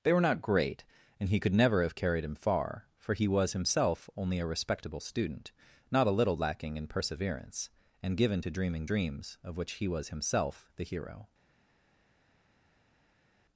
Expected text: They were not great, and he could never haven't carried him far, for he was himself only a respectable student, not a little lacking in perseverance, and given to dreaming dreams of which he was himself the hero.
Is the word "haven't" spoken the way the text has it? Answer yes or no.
no